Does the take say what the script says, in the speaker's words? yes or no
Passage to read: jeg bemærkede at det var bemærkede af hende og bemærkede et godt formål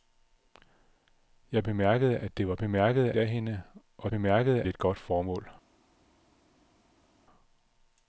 yes